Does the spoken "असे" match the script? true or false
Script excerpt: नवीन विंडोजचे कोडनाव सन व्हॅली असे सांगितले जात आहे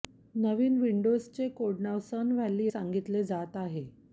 false